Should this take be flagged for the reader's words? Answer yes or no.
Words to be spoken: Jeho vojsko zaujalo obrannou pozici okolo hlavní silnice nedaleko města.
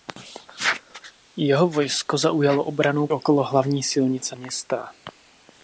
yes